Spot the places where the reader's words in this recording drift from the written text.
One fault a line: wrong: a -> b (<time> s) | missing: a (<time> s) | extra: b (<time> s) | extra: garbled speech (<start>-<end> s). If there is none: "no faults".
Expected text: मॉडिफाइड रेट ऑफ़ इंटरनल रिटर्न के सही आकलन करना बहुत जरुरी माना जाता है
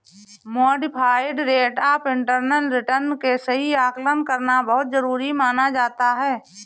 no faults